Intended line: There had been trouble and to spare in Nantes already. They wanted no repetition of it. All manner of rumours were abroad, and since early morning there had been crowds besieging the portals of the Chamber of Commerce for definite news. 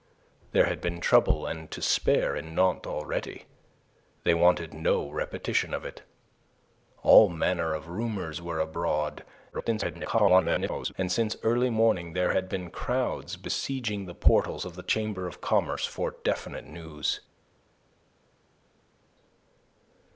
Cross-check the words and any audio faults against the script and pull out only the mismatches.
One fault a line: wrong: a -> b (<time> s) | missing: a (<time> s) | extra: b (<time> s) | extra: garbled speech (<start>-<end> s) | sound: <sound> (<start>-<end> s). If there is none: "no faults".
extra: garbled speech (9.5-10.9 s)